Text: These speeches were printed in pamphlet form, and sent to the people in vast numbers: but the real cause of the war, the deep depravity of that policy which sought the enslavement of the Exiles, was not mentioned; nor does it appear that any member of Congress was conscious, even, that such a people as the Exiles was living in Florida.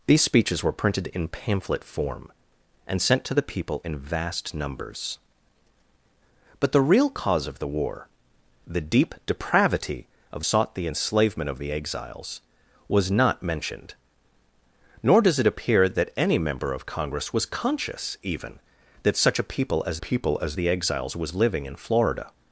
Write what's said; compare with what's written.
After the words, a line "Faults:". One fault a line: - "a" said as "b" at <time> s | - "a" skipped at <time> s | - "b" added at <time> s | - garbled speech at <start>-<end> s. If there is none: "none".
These speeches were printed in pamphlet form, and sent to the people in vast numbers: but the real cause of the war, the deep depravity of sought the enslavement of the Exiles, was not mentioned; nor does it appear that any member of Congress was conscious, even, that such a people as people as the Exiles was living in Florida.
Faults:
- "that policy which" skipped at 10.4 s
- "people as" added at 20.0 s